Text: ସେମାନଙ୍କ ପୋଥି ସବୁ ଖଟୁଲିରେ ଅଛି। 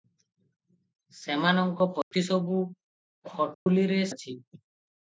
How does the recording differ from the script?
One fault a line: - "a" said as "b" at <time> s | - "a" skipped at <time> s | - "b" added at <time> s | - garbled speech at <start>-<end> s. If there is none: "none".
none